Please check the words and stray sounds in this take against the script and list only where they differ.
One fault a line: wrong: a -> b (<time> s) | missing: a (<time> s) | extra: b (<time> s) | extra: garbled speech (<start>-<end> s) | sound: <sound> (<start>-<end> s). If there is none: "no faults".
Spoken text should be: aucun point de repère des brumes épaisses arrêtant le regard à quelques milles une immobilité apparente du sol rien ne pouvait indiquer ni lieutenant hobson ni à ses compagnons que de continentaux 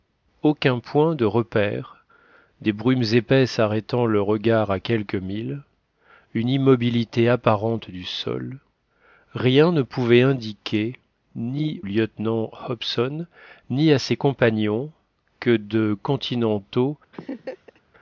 sound: laugh (17.1-17.8 s)